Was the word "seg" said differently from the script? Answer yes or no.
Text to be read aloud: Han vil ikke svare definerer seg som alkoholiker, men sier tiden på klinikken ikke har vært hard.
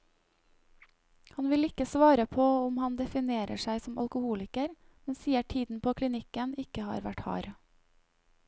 no